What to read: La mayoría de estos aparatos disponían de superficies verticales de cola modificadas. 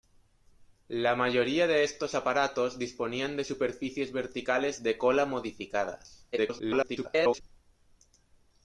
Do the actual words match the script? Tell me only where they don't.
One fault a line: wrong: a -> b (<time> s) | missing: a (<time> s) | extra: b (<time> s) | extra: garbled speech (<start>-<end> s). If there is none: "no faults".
extra: garbled speech (6.3-7.4 s)